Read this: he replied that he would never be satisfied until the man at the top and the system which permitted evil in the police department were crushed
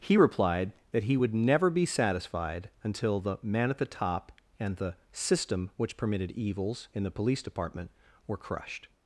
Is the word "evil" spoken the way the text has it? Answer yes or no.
no